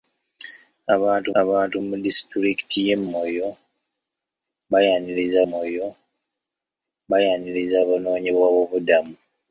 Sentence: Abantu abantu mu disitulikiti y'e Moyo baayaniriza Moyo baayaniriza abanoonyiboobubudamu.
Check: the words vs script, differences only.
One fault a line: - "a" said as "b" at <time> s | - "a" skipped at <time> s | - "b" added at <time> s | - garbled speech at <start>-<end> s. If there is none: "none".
none